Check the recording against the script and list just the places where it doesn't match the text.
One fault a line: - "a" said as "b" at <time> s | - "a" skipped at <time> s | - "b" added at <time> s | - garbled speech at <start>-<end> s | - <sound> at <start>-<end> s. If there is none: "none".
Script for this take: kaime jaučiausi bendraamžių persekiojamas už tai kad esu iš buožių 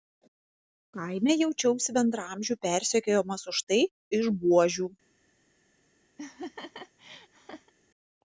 - "kad esu" skipped at 3.8 s
- laugh at 6.2-7.7 s